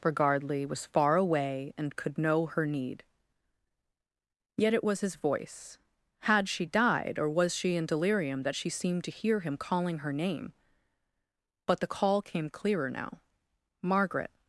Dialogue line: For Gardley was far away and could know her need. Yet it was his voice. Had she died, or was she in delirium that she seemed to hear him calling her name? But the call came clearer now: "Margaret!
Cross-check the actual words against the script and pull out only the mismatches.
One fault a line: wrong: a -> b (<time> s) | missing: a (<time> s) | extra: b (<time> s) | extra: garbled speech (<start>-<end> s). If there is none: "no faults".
no faults